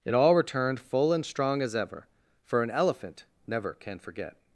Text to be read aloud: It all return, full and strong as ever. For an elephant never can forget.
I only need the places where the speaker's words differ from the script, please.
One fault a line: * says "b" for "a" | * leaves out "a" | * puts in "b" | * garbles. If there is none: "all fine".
* says "returned" for "return"